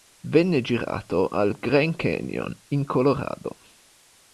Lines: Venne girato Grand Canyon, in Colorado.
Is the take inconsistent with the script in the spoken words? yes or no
yes